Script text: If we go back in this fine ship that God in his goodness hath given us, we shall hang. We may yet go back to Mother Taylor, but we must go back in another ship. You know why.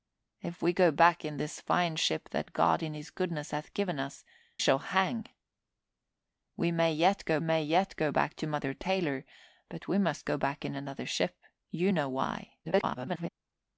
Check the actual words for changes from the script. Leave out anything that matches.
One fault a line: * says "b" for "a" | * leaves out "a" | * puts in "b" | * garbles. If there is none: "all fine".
* leaves out "we"
* puts in "may yet go"
* garbles